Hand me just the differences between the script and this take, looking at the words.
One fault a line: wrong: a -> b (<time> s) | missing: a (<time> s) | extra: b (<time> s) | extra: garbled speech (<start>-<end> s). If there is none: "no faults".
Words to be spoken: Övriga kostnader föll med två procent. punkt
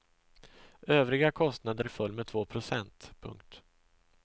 no faults